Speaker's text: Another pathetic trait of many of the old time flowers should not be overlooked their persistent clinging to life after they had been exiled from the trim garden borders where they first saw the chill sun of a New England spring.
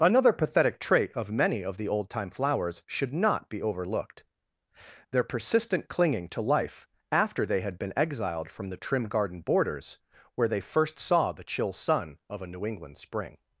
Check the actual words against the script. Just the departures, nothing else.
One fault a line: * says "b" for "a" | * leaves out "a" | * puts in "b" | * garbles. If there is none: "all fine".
all fine